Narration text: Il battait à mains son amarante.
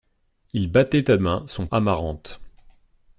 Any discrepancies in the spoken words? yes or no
no